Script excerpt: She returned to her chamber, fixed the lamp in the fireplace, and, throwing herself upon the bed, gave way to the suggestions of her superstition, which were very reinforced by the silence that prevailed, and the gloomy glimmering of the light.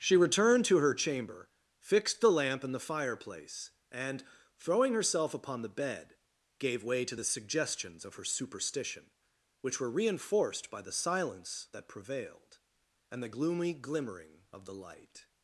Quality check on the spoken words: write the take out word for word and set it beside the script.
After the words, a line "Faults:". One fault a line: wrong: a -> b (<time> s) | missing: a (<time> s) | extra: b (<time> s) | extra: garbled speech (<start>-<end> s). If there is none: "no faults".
She returned to her chamber, fixed the lamp in the fireplace, and, throwing herself upon the bed, gave way to the suggestions of her superstition, which were reinforced by the silence that prevailed, and the gloomy glimmering of the light.
Faults:
missing: very (9.9 s)